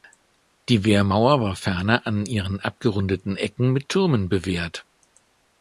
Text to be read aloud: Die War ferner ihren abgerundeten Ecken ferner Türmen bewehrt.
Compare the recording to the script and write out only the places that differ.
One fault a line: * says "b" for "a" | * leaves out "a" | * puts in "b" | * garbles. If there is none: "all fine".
* puts in "Wehrmauer"
* puts in "an"
* says "mit" for "ferner"